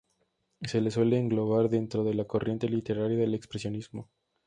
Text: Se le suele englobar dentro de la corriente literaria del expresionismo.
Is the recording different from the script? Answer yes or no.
no